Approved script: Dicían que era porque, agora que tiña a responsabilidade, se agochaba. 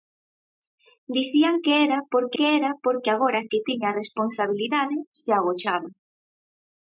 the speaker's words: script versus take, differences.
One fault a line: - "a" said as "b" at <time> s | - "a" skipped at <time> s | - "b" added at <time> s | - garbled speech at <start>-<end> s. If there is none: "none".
- "que era porque" added at 2.4 s